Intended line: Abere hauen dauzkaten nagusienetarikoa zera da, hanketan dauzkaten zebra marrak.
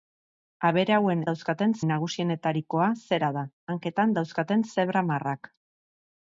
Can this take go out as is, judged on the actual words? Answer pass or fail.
pass